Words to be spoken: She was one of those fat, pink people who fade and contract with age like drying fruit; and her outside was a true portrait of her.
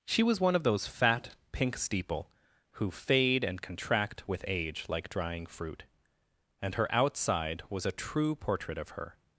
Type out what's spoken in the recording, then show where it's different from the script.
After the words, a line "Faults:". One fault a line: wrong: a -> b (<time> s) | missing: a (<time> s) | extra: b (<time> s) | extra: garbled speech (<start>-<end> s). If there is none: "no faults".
She was one of those fat, pink steeple who fade and contract with age like drying fruit; and her outside was a true portrait of her.
Faults:
wrong: people -> steeple (1.8 s)